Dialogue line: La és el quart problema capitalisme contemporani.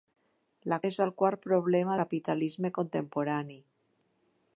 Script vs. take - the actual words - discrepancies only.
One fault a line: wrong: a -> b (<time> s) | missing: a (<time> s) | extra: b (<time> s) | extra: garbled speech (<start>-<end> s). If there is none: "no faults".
no faults